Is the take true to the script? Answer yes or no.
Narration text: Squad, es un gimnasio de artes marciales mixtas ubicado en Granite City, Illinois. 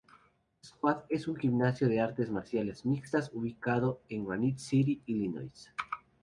yes